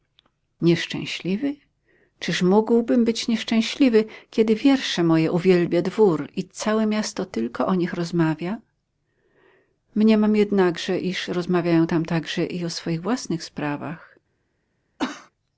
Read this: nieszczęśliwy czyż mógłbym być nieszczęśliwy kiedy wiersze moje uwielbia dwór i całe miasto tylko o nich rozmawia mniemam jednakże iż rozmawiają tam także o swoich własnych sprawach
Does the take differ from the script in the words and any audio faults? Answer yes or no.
yes